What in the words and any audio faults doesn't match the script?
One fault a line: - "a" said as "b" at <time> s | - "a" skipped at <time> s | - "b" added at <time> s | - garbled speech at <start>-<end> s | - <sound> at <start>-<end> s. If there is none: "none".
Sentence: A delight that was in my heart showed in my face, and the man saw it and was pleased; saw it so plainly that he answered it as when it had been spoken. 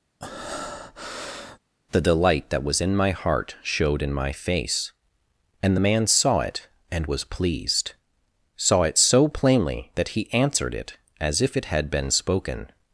- breath at 0.2-1.6 s
- "A" said as "The" at 1.9 s
- "when" said as "if" at 11.4 s